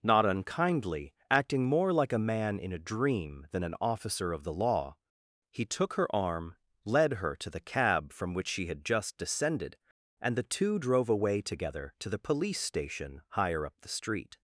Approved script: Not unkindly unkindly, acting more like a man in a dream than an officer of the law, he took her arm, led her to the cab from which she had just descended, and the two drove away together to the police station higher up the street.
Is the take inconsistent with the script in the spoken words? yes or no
yes